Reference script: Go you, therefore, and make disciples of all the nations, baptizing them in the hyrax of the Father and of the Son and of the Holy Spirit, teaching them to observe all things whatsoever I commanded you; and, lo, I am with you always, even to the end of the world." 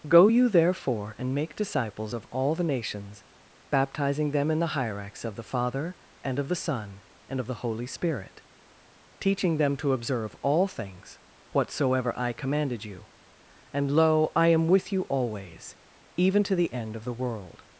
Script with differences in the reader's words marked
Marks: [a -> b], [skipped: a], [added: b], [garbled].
Go you, therefore, and make disciples of all the nations, baptizing them in the hyrax of the Father and of the Son and of the Holy Spirit, teaching them to observe all things whatsoever I commanded you; and, lo, I am with you always, even to the end of the world."